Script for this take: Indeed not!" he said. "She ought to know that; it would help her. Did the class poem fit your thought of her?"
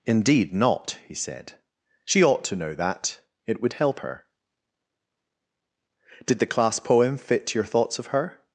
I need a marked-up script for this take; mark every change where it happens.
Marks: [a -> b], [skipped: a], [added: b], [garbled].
Indeed not!" he said. "She ought to know that; it would help her. Did the class poem fit your [thought -> thoughts] of her?"